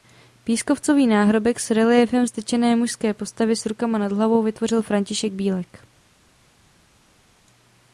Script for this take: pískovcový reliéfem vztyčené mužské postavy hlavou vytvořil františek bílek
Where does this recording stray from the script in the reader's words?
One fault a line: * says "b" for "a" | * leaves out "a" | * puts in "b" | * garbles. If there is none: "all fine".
* puts in "náhrobek s"
* puts in "s rukama nad"